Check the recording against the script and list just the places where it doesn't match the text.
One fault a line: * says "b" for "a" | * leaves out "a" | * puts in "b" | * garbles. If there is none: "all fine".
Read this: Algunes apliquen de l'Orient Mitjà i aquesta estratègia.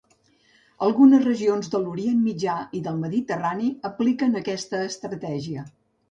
* says "regions" for "apliquen"
* puts in "del Mediterrani apliquen"